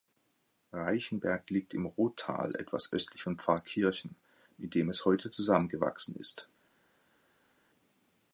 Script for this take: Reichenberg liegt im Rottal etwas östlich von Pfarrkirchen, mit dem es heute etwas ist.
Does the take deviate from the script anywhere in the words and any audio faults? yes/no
yes